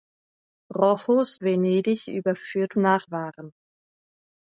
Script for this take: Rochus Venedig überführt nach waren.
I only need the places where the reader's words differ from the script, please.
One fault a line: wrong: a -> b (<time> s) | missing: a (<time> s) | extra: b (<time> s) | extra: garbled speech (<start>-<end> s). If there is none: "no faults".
no faults